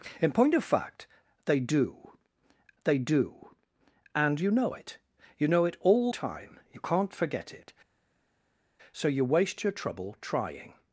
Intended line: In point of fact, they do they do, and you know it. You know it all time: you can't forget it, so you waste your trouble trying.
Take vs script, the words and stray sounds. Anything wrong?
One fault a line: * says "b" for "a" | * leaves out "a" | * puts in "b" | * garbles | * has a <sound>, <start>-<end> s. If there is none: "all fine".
all fine